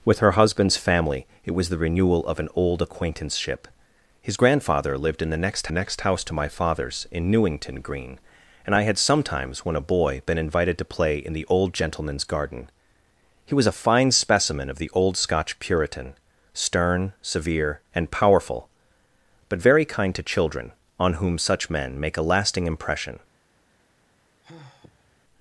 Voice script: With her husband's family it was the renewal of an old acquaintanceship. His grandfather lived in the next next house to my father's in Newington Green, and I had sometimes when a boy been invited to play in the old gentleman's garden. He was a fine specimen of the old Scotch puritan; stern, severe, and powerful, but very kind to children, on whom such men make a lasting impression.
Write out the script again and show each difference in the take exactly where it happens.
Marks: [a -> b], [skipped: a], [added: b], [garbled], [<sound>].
With her husband's family it was the renewal of an old acquaintanceship. His grandfather lived in the next next house to my father's in Newington Green, and I had sometimes when a boy been invited to play in the old gentleman's garden. He was a fine specimen of the old Scotch puritan; stern, severe, and powerful, but very kind to children, on whom such men make a lasting impression. [sigh]